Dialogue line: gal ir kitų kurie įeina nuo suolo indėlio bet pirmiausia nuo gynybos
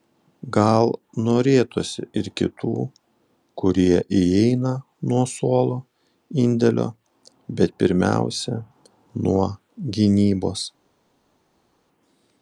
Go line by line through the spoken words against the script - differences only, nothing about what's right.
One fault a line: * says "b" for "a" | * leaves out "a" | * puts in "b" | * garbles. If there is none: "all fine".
* puts in "norėtųsi"